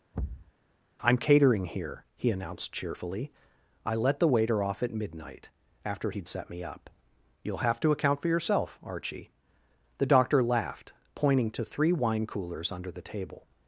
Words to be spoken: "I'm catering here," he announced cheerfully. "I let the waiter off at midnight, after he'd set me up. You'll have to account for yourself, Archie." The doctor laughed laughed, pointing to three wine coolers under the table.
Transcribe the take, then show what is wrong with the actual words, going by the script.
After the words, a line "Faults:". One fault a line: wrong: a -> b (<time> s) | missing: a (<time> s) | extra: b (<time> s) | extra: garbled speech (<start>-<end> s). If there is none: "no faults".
"I'm catering here," he announced cheerfully. "I let the waiter off at midnight, after he'd set me up. You'll have to account for yourself, Archie." The doctor laughed, pointing to three wine coolers under the table.
Faults:
missing: laughed (10.9 s)